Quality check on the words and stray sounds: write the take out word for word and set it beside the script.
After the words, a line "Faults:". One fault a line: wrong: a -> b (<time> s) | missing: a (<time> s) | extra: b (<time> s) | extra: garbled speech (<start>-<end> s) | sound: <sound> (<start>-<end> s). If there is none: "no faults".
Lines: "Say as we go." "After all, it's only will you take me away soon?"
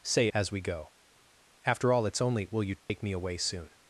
"Say as we go." "After all, it's only will you take me away soon?"
Faults:
sound: dropout (2.8-2.9 s)